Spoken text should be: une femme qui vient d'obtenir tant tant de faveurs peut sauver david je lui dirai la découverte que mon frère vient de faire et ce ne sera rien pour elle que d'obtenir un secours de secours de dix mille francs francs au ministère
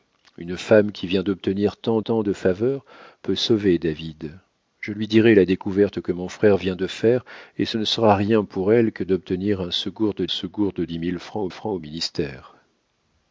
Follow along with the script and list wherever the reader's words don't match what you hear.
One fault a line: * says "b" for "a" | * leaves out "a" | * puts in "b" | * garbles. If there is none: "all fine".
all fine